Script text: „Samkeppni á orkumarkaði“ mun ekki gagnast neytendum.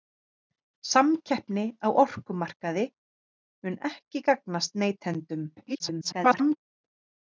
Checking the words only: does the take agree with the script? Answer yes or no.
no